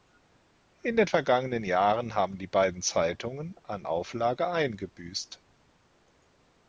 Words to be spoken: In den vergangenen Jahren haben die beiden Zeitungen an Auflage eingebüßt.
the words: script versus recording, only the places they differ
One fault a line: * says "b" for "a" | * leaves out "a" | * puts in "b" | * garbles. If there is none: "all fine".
all fine